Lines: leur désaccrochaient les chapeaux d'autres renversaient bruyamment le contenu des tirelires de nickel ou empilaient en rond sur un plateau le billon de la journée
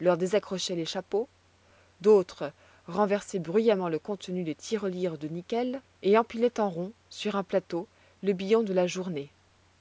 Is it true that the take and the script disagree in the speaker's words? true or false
true